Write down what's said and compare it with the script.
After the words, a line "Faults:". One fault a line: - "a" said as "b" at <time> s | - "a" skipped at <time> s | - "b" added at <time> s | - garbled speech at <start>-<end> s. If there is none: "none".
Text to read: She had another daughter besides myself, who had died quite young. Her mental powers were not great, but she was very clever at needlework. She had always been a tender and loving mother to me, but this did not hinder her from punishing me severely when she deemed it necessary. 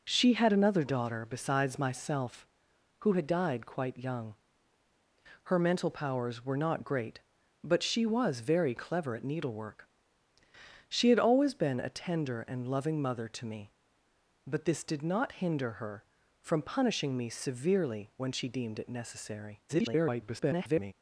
She had another daughter besides myself, who had died quite young. Her mental powers were not great, but she was very clever at needlework. She had always been a tender and loving mother to me, but this did not hinder her from punishing me severely when she deemed it necessary. [garbled]
Faults:
- garbled speech at 19.7-20.9 s